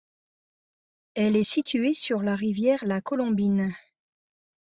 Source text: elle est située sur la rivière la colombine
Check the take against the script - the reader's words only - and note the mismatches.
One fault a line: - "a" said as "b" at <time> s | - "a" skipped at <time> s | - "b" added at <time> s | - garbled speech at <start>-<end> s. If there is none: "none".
none